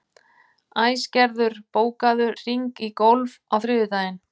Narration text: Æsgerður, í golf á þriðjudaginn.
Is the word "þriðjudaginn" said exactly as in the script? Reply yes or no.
yes